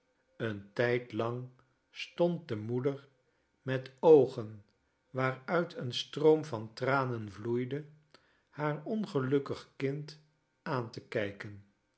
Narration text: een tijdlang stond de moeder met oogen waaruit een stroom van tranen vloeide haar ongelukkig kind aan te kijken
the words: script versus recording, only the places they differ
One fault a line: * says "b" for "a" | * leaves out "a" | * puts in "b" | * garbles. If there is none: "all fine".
all fine